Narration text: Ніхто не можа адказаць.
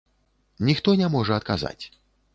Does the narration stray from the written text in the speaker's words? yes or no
no